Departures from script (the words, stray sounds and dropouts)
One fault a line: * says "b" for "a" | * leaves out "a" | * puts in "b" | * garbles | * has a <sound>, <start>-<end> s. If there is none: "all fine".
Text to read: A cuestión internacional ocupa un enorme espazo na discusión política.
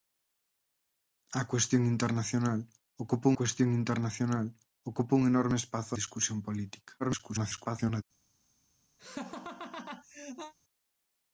* puts in "cuestión internacional ocupa"
* leaves out "na"
* garbles
* has a laugh, 9.0-10.5 s